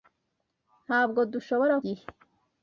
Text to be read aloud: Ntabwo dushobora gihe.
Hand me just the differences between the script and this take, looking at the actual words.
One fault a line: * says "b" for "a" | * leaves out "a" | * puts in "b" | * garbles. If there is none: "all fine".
all fine